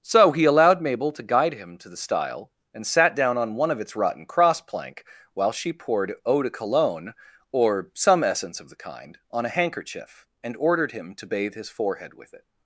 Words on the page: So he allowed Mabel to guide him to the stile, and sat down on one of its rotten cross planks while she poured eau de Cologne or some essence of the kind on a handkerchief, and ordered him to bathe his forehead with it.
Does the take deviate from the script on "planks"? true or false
true